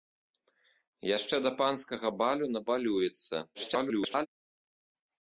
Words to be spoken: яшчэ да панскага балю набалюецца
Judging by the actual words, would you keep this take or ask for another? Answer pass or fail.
fail